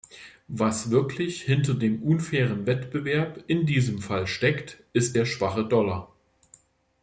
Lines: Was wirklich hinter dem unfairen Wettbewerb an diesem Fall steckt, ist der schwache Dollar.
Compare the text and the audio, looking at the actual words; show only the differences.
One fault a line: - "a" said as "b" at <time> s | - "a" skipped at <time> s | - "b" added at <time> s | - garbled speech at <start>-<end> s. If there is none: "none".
- "an" said as "in" at 3.5 s